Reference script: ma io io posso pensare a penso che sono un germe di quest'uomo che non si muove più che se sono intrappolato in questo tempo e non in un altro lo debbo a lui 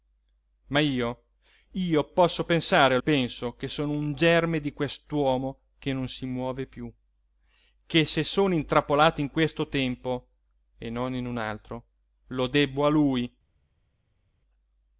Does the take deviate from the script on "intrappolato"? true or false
false